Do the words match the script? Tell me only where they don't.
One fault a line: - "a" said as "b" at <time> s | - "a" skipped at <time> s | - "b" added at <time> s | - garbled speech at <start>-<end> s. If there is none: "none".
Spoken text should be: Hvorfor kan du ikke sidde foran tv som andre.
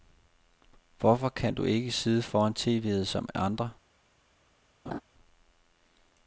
none